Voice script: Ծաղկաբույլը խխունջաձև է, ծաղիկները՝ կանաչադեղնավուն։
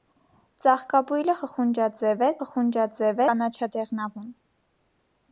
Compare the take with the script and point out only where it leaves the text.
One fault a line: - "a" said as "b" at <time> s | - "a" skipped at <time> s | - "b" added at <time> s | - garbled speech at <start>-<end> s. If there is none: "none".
- "ծաղիկները" said as "խխունջաձև" at 2.4 s